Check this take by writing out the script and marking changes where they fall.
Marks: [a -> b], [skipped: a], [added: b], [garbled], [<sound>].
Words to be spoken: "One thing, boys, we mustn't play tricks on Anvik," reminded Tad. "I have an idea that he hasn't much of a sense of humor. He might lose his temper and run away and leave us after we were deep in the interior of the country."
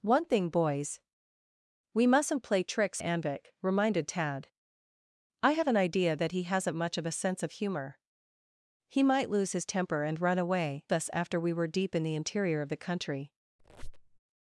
"One thing, boys, we mustn't play tricks [skipped: on] Anvik," reminded Tad. "I have an idea that he hasn't much of a sense of humor. He might lose his temper and run away [skipped: and leave] us after we were deep in the interior of the country." [squeak]